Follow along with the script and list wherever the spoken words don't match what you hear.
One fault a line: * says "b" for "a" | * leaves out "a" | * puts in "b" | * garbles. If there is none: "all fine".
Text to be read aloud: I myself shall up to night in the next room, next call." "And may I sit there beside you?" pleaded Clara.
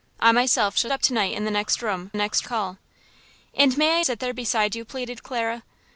all fine